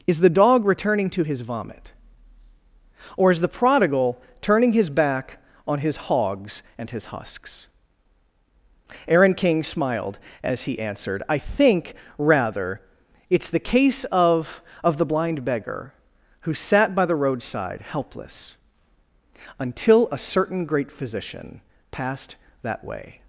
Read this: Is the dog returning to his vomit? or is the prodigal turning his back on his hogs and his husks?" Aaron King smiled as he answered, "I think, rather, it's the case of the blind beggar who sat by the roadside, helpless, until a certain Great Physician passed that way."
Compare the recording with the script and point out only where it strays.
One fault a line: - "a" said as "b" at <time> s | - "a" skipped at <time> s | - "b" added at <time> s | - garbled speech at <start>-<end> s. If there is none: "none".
- "of" added at 14.8 s